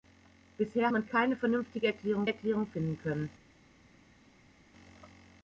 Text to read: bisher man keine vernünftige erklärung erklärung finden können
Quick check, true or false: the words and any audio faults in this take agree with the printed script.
true